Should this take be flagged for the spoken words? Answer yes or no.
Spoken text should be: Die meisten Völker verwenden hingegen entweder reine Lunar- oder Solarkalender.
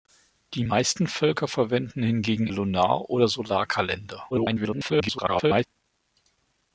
yes